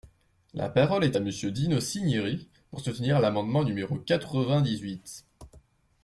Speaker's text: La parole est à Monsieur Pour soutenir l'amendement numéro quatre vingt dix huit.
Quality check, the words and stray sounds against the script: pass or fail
fail